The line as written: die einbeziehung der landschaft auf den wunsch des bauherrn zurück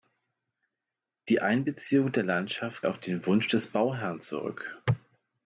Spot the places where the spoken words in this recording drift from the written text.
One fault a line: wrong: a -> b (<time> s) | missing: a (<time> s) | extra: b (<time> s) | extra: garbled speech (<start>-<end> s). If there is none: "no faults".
no faults